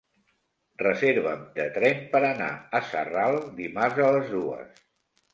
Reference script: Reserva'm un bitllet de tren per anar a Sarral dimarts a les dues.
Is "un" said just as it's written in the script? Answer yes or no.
no